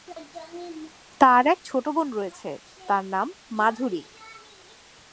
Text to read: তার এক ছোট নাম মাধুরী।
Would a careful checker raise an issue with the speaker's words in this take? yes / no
yes